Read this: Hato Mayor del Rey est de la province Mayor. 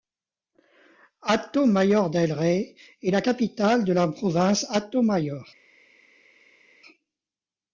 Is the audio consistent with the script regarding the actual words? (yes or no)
no